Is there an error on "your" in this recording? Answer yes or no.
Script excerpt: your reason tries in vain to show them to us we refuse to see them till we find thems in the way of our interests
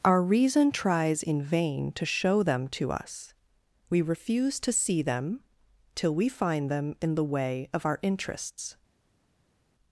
yes